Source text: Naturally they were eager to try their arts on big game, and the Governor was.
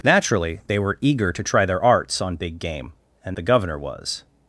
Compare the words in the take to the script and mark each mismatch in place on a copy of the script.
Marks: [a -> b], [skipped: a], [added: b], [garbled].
Naturally they were eager to try their arts on big game, and the Governor was.